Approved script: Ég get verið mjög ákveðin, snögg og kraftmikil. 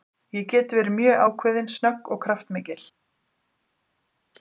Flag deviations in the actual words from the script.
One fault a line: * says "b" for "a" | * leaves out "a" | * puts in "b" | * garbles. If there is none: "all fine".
all fine